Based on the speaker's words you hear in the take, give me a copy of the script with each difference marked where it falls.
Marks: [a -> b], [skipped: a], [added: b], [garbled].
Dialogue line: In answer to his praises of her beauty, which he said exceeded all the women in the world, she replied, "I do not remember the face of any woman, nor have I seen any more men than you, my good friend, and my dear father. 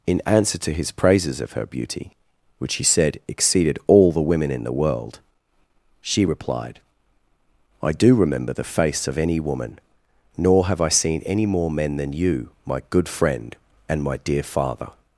In answer to his praises of her beauty, which he said exceeded all the women in the world, she replied, "I do [skipped: not] remember the face of any woman, nor have I seen any more men than you, my good friend, and my dear father.